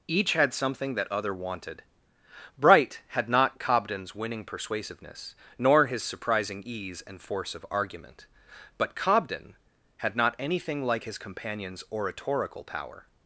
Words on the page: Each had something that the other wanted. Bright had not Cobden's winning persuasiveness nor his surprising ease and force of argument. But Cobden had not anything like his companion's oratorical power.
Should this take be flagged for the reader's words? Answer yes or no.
yes